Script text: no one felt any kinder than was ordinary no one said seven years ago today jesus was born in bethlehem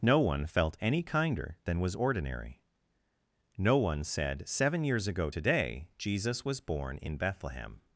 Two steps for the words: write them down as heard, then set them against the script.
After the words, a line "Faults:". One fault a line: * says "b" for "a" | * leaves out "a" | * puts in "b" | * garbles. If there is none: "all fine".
no one felt any kinder than was ordinary no one said seven years ago today jesus was born in bethlehem
Faults:
all fine